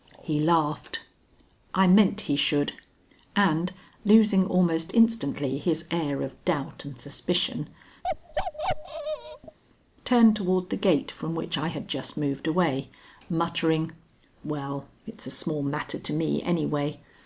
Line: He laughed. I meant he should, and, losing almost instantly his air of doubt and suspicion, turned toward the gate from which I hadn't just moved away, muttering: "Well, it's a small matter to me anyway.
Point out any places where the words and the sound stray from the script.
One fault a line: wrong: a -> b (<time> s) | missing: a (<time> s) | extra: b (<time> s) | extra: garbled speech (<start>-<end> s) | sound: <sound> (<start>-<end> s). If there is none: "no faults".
sound: bark (8.0-9.6 s)
wrong: hadn't -> had (11.7 s)